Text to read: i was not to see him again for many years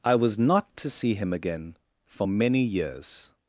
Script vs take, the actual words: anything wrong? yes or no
no